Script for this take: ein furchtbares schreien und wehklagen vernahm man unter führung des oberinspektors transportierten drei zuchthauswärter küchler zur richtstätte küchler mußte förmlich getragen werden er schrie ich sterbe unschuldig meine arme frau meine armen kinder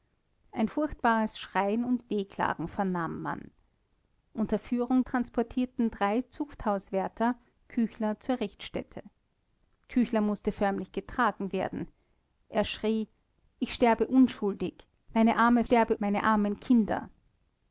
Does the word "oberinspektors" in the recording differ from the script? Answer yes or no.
yes